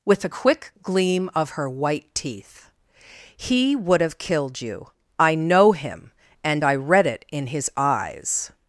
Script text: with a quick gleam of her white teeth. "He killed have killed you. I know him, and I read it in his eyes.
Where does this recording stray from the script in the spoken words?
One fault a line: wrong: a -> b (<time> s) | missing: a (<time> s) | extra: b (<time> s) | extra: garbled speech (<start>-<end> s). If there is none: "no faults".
wrong: killed -> would (3.7 s)